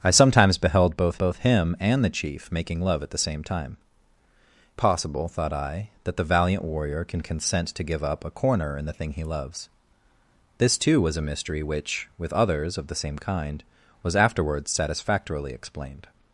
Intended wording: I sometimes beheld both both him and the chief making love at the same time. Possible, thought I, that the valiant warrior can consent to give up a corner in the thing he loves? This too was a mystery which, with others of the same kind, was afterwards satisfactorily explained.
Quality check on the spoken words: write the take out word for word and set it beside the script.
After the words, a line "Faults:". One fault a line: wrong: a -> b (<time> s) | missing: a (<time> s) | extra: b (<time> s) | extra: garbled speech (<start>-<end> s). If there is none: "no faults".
I sometimes beheld both both him and the chief making love at the same time. Possible, thought I, that the valiant warrior can consent to give up a corner in the thing he loves? This too was a mystery which, with others of the same kind, was afterwards satisfactorily explained.
Faults:
no faults